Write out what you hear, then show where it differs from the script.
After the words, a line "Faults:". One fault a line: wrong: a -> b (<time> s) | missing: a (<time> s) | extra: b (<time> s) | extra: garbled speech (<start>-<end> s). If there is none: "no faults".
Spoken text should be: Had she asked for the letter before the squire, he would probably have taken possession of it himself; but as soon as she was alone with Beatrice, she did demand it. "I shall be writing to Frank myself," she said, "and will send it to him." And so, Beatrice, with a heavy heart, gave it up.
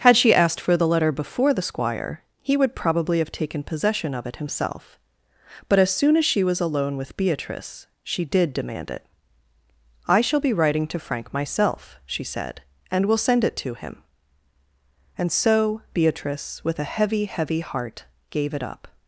Had she asked for the letter before the squire, he would probably have taken possession of it himself; but as soon as she was alone with Beatrice, she did demand it. "I shall be writing to Frank myself," she said, "and will send it to him." And so, Beatrice, with a heavy heavy heart, gave it up.
Faults:
extra: heavy (17.2 s)